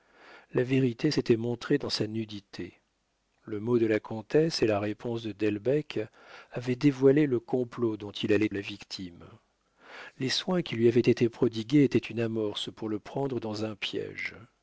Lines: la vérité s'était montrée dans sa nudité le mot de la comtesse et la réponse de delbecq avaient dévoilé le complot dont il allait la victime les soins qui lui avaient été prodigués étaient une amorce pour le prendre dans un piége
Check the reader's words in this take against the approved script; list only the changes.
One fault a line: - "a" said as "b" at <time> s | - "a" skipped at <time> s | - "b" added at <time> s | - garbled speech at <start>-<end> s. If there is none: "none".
none